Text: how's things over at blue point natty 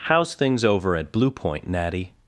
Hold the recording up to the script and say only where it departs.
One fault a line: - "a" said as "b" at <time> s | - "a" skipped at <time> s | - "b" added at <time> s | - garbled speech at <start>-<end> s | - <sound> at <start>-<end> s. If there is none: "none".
none